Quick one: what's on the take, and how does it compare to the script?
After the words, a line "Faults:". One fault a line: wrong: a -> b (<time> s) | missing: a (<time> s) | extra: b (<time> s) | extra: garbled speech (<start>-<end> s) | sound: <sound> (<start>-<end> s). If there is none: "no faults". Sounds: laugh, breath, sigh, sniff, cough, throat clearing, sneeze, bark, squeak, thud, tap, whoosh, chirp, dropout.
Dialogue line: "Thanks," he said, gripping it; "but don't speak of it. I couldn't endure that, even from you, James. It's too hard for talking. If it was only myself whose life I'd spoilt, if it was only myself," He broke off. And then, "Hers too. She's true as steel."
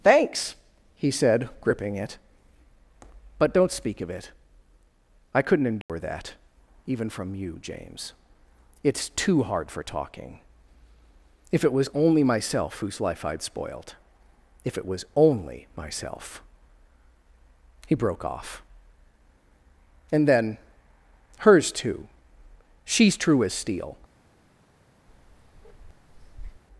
"Thanks," he said, gripping it; "but don't speak of it. I couldn't endure that, even from you, James. It's too hard for talking. If it was only myself whose life I'd spoilt, if it was only myself," He broke off. And then, "Hers too. She's true as steel."
Faults:
sound: dropout (5.8-5.9 s)
sound: bark (25.1-26.6 s)